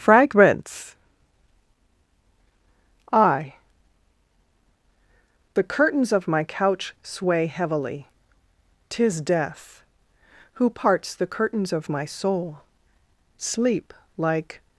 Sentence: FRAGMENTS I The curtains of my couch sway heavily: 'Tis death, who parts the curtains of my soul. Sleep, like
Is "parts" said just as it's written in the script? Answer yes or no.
yes